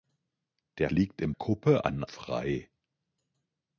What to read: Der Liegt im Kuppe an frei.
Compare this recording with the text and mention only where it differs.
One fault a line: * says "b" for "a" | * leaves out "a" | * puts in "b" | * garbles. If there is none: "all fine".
all fine